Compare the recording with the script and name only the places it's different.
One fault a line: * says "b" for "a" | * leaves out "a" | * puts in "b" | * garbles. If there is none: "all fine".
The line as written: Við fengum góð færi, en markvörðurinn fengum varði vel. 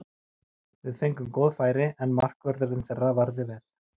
* says "þeirra" for "fengum"